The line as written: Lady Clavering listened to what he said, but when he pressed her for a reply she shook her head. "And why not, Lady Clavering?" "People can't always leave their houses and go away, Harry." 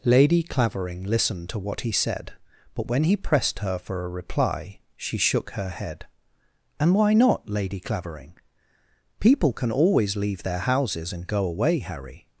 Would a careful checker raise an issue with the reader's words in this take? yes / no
yes